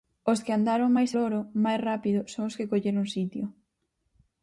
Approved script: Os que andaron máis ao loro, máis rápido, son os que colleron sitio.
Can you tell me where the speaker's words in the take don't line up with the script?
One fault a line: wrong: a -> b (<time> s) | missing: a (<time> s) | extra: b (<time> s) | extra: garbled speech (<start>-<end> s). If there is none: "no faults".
missing: ao (1.1 s)